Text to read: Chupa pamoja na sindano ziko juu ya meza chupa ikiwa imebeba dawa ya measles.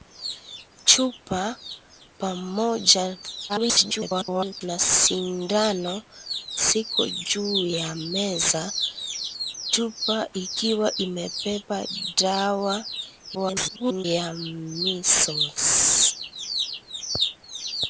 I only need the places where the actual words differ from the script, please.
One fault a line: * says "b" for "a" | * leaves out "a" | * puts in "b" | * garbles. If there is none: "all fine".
* garbles
* garbles